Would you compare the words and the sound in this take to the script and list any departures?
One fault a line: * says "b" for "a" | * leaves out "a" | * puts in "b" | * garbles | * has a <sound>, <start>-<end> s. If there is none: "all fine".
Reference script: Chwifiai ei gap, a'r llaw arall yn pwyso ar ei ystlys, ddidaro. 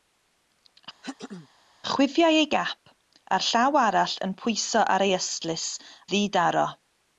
* has a throat clearing, 1.0-1.5 s